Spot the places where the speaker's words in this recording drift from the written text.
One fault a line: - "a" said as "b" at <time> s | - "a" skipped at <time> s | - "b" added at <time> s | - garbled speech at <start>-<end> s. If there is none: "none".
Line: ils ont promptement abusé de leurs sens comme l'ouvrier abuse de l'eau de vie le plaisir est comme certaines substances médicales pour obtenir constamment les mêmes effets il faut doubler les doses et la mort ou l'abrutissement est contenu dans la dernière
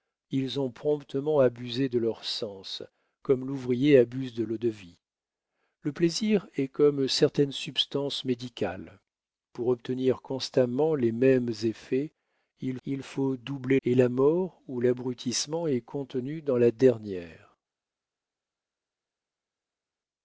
- "il" added at 12.9 s
- "les doses" skipped at 13.8 s